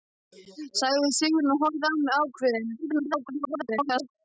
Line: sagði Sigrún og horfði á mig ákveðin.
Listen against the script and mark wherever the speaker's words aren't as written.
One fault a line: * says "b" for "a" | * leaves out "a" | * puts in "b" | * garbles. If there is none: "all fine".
* garbles